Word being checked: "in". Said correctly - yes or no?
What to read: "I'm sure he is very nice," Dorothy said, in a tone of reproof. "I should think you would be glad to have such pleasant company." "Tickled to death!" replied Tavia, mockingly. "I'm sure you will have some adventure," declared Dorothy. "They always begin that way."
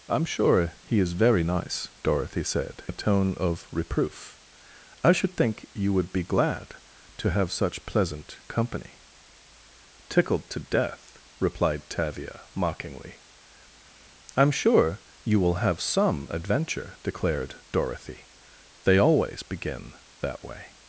no